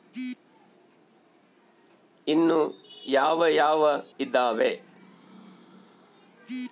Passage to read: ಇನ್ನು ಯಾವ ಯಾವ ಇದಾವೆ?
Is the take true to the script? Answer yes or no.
yes